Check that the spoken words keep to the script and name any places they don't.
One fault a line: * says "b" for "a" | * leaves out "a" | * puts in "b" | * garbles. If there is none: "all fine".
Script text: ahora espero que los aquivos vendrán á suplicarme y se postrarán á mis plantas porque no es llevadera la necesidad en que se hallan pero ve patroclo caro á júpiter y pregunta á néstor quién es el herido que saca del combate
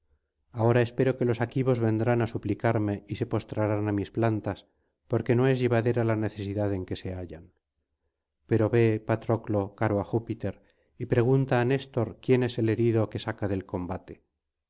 all fine